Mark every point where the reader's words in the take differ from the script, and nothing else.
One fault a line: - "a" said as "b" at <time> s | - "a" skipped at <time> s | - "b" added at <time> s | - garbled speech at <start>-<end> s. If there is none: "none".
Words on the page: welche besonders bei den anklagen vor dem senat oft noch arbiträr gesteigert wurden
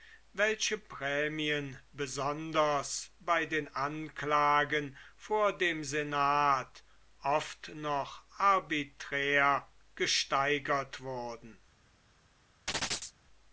- "prämien" added at 0.8 s